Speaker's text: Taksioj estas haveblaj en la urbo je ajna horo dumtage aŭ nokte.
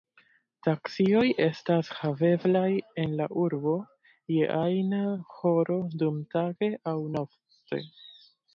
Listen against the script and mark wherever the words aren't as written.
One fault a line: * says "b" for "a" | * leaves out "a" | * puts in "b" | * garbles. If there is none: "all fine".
all fine